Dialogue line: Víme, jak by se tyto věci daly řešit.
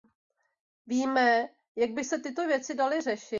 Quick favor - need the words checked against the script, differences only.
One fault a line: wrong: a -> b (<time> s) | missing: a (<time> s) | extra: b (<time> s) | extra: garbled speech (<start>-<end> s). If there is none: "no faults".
no faults